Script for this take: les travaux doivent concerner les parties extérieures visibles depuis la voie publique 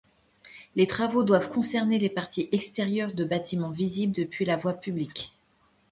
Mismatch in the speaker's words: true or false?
true